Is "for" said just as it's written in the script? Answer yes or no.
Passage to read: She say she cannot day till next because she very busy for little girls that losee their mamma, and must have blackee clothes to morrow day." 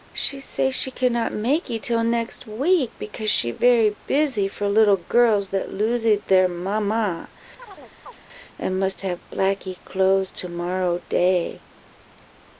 yes